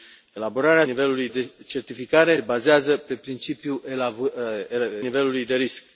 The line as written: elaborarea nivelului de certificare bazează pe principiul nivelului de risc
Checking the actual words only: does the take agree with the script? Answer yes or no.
yes